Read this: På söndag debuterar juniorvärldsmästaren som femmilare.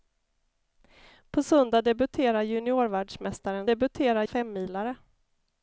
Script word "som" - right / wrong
wrong